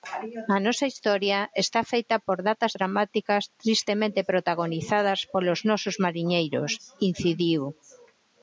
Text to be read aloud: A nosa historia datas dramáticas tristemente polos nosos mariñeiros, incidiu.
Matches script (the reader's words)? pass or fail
fail